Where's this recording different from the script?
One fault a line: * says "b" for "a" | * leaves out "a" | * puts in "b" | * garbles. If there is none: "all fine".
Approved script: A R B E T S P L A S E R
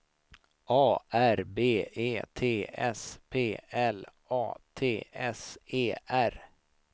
* puts in "T"